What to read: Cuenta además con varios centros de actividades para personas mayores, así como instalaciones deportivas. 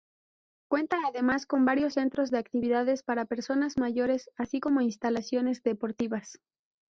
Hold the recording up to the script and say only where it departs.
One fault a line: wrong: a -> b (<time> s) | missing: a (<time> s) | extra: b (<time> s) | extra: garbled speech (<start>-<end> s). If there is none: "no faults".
no faults